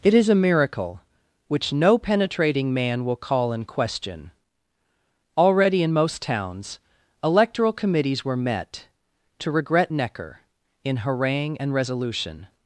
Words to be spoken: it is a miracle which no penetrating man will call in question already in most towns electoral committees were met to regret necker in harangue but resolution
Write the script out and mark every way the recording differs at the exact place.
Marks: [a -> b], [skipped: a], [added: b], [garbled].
it is a miracle which no penetrating man will call in question already in most towns electoral committees were met to regret necker in harangue [but -> and] resolution